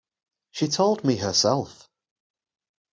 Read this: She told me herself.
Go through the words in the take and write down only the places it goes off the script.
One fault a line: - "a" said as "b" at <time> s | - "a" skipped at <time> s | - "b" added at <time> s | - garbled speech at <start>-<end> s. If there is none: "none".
none